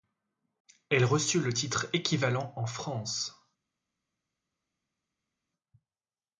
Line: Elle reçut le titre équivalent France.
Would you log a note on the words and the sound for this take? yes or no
yes